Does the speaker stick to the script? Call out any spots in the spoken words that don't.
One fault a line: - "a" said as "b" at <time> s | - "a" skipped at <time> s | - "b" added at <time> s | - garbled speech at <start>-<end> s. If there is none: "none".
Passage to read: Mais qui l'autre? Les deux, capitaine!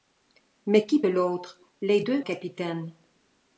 none